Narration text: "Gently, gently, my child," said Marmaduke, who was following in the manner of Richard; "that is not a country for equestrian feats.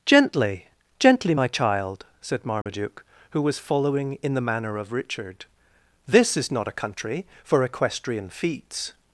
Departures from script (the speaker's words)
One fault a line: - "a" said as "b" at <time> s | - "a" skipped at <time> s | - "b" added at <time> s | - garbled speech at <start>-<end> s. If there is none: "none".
- "that" said as "this" at 6.1 s